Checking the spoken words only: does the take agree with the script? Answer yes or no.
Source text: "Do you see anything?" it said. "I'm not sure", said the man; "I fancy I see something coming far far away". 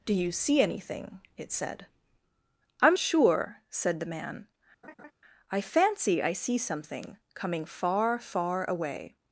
no